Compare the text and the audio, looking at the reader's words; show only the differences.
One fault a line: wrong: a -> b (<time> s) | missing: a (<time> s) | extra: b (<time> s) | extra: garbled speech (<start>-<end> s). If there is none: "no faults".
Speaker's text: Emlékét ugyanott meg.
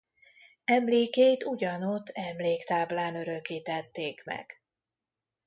extra: emléktáblán örökítették (2.1 s)